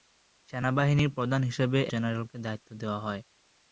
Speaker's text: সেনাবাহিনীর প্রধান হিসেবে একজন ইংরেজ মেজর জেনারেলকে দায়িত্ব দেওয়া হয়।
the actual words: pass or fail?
fail